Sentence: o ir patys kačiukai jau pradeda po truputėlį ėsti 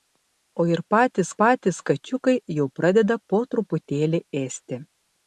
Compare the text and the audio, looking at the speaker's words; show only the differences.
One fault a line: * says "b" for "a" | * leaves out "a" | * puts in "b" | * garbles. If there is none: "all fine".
* puts in "patys"